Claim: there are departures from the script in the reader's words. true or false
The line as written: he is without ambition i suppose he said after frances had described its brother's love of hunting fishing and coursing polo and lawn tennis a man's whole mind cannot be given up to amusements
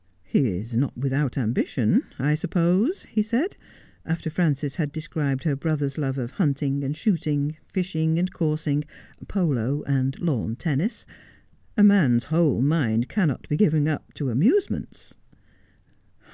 true